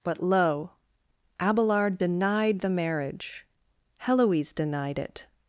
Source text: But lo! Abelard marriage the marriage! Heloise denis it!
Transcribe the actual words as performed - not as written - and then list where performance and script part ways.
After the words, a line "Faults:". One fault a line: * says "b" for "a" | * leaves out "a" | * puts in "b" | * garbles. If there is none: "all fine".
But lo! Abelard denied the marriage! Heloise denied it!
Faults:
* says "denied" for "marriage"
* says "denied" for "denis"